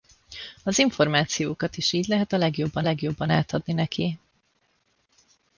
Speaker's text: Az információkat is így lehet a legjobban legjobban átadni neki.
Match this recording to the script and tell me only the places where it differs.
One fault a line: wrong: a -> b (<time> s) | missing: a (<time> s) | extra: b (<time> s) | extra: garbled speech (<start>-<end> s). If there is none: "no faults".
no faults